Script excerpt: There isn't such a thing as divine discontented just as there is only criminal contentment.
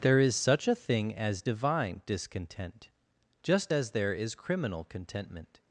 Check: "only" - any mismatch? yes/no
yes